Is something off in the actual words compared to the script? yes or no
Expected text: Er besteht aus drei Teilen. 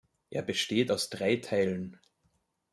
no